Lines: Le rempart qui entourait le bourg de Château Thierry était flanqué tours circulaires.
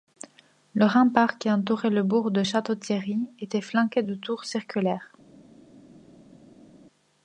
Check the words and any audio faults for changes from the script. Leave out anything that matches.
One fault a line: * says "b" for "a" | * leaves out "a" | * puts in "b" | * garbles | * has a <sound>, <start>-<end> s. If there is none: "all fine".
* puts in "de"